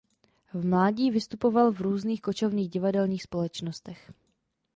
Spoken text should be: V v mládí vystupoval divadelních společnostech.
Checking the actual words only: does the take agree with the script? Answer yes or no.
no